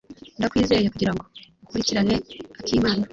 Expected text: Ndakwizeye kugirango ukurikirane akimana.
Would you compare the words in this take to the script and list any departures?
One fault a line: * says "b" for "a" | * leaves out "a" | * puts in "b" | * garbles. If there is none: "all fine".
all fine